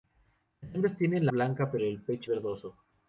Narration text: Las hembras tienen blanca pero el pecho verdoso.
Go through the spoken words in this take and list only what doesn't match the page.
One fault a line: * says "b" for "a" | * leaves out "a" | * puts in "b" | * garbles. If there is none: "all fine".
all fine